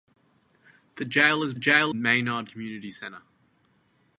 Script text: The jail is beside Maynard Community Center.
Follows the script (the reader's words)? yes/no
no